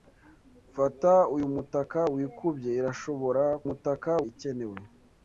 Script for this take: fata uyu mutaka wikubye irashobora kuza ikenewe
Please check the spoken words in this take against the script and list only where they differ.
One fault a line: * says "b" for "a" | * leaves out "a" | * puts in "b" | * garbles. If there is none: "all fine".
* says "mutaka" for "kuza"